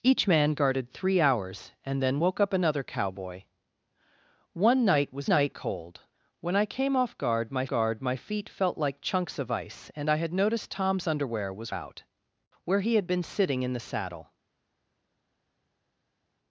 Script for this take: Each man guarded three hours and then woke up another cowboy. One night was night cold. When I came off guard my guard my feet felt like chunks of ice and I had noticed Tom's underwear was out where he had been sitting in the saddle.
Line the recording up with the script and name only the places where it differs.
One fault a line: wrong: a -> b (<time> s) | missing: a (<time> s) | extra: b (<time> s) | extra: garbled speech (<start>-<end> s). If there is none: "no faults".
no faults